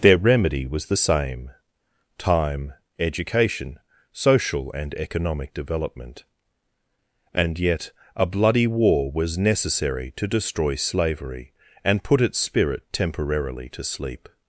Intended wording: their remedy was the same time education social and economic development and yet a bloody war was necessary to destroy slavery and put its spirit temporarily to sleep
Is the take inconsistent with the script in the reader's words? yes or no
no